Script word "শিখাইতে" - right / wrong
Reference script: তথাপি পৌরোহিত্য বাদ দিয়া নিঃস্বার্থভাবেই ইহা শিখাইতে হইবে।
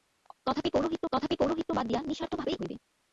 wrong